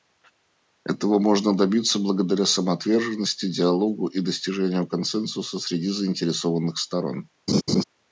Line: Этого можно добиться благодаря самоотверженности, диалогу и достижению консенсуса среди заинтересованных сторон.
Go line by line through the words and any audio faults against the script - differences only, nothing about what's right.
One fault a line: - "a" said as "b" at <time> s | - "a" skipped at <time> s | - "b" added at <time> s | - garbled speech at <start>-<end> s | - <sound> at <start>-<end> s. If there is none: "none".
- laugh at 7.5-7.8 s